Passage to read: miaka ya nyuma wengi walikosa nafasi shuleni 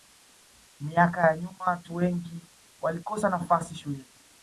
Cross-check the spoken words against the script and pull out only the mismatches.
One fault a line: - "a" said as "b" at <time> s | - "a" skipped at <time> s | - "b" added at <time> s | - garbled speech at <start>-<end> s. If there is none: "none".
- "watu" added at 1.6 s